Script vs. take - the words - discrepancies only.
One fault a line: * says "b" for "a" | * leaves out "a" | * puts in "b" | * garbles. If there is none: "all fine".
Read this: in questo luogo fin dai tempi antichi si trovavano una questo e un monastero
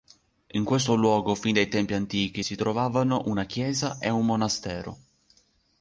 * says "chiesa" for "questo"